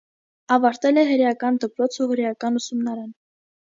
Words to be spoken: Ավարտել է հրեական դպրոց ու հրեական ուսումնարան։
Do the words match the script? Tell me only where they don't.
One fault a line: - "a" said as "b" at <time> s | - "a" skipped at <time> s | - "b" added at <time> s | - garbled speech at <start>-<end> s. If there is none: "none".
none